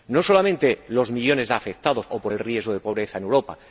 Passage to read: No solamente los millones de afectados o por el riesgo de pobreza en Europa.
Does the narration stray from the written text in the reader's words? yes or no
no